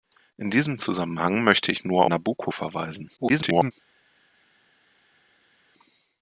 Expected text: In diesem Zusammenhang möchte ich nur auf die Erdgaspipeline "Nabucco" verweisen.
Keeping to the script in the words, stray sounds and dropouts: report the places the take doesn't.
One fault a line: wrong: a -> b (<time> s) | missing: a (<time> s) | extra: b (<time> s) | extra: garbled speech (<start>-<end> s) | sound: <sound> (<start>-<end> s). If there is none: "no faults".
missing: auf die Erdgaspipeline (2.0 s)
extra: garbled speech (3.2-3.7 s)